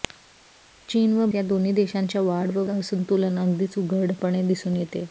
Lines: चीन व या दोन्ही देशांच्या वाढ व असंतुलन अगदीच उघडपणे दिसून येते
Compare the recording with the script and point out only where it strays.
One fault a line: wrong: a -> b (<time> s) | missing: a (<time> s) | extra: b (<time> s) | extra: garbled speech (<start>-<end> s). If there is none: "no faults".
no faults